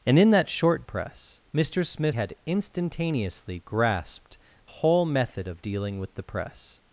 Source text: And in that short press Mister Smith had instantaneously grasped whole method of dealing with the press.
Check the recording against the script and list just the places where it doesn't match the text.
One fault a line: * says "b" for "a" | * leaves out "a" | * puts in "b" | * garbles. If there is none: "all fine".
all fine